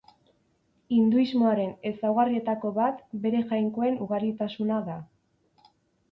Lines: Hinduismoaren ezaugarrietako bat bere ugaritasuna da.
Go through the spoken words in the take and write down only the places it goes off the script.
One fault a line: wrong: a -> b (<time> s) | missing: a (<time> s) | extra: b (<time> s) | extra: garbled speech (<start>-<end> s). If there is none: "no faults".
extra: jainkoen (3.5 s)